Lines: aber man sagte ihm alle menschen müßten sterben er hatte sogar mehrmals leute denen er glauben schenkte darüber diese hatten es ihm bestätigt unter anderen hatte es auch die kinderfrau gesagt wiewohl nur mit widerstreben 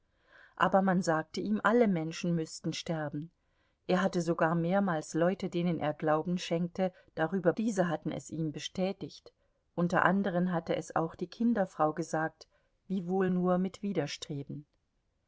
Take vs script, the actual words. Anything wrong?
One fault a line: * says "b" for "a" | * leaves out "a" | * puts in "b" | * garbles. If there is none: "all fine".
all fine